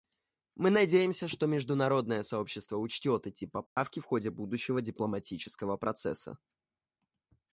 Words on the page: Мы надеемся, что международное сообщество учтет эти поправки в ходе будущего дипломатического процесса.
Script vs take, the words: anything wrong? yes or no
no